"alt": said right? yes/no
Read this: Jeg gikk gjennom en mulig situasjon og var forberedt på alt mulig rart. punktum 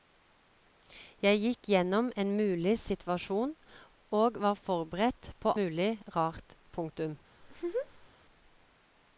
no